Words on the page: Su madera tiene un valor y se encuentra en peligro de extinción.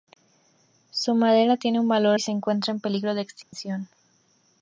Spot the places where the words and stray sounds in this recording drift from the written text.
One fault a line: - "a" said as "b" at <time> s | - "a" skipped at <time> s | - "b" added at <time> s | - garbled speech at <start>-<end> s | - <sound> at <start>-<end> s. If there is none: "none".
- dropout at 3.4-3.5 s